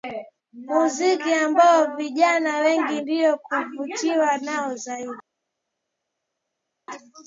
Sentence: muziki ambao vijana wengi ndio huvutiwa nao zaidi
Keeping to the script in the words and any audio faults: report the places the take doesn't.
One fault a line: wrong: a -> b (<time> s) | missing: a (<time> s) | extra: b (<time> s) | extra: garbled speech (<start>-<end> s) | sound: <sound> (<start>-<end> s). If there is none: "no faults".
no faults